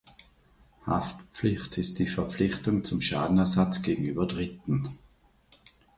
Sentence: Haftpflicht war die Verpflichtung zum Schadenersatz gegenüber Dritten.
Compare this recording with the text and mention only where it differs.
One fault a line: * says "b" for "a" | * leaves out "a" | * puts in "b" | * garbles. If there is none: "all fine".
* says "ist" for "war"